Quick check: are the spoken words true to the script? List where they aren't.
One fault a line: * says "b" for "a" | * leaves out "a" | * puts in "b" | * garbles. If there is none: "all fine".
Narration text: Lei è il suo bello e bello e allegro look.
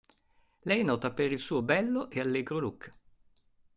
* puts in "nota per"
* leaves out "bello e"